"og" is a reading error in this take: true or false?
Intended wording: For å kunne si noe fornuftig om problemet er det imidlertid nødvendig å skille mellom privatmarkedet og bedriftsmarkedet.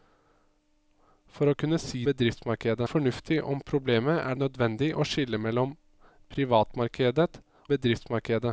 true